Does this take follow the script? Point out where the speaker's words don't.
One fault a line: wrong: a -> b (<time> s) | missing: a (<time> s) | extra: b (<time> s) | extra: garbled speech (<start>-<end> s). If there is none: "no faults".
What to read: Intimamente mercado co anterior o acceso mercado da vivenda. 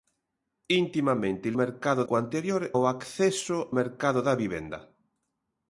no faults